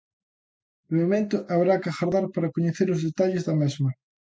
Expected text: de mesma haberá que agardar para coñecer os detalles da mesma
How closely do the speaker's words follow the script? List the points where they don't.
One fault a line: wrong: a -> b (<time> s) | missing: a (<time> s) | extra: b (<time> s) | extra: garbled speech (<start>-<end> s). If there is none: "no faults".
wrong: mesma -> momento (1.0 s)